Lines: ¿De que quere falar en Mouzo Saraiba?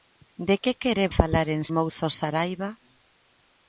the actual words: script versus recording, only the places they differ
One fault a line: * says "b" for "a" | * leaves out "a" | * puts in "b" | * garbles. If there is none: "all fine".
all fine